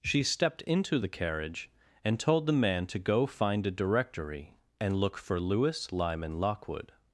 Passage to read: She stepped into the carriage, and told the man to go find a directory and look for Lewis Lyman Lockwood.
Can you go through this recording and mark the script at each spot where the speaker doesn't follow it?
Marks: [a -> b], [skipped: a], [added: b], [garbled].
She stepped into the carriage, and told the man to go find a directory and look for Lewis Lyman Lockwood.